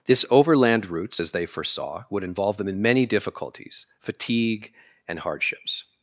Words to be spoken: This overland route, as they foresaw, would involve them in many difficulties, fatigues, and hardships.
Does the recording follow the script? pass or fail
fail